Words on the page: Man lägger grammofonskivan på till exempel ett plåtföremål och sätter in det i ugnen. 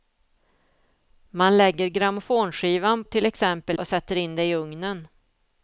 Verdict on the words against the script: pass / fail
fail